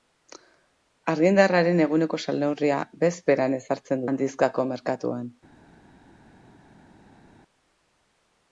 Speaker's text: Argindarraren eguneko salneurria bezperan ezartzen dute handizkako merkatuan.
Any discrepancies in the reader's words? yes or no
yes